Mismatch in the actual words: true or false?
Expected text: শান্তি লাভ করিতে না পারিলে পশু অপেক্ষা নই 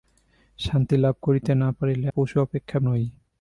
false